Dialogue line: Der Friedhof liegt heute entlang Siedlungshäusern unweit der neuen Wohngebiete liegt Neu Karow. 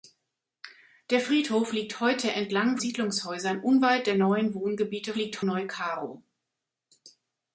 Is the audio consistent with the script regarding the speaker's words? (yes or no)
yes